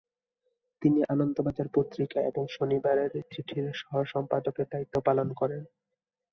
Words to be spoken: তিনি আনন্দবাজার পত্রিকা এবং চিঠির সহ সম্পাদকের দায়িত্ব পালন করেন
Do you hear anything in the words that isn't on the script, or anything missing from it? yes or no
yes